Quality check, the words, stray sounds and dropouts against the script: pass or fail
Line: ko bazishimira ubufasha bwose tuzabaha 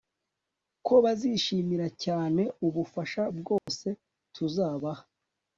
fail